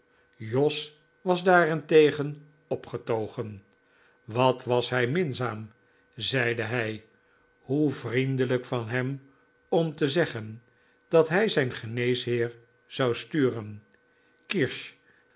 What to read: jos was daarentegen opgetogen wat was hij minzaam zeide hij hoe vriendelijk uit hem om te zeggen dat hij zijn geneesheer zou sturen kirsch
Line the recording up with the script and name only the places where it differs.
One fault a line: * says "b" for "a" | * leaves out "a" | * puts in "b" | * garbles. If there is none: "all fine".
* says "van" for "uit"